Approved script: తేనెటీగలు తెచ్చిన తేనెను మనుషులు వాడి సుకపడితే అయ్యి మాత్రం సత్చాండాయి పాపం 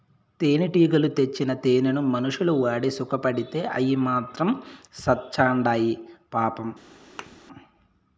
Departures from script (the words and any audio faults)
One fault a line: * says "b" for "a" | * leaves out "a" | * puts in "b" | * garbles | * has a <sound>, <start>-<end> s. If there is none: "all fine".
* has a thud, 7.2-7.4 s